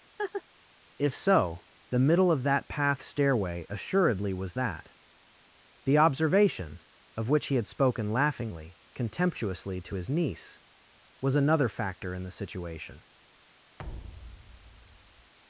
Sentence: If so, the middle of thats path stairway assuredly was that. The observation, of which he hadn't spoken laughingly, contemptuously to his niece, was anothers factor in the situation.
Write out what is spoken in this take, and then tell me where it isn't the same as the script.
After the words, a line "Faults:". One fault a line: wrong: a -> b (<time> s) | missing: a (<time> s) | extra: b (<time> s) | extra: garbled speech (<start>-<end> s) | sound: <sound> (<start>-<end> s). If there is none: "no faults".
If so, the middle of that path stairway assuredly was that. The observation, of which he had spoken laughingly, contemptuously to his niece, was another factor in the situation.
Faults:
sound: laugh (0.2-0.4 s)
wrong: thats -> that (2.4 s)
wrong: hadn't -> had (7.6 s)
wrong: anothers -> another (11.3 s)
sound: thud (13.8-15.3 s)